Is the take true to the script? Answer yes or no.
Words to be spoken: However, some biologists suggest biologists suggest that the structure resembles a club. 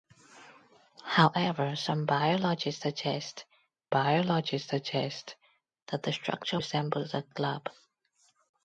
yes